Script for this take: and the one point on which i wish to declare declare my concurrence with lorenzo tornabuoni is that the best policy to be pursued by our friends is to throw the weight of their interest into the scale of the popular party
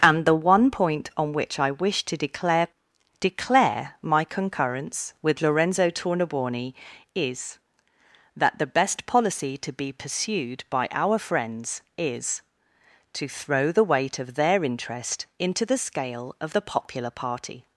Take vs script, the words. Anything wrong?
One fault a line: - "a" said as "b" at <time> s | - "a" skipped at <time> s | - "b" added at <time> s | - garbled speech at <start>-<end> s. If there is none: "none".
none